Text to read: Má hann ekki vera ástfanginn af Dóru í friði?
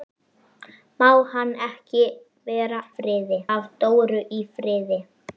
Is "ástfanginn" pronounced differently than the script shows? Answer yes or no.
yes